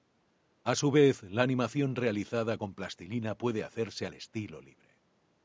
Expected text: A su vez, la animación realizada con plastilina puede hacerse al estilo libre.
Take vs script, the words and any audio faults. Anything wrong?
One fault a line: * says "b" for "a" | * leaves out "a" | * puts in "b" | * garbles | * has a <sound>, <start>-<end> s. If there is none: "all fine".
all fine